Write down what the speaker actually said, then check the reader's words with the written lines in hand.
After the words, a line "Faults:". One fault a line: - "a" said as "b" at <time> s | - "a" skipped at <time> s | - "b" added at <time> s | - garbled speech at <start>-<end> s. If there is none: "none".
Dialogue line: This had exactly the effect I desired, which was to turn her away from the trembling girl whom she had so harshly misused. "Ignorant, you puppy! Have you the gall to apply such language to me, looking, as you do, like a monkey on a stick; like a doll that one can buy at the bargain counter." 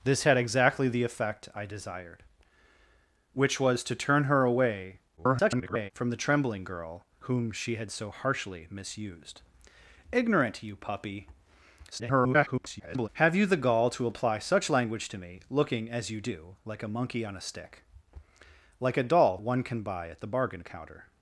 This had exactly the effect I desired, which was to turn her away [garbled] from the trembling girl whom she had so harshly misused. "Ignorant, you puppy! [garbled] Have you the gall to apply such language to me, looking, as you do, like a monkey on a stick; like a doll one can buy at the bargain counter."
Faults:
- garbled speech at 5.2-5.9 s
- garbled speech at 11.9-13.1 s
- "that" skipped at 19.4 s